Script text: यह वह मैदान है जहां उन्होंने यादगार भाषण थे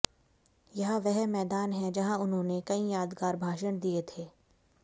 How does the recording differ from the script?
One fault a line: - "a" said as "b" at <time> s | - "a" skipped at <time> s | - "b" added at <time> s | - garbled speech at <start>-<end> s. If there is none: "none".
- "कई" added at 2.7 s
- "दिए" added at 3.8 s